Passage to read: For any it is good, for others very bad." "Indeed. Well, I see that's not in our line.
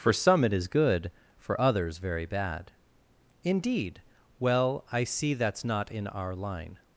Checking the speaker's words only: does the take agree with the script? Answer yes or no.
no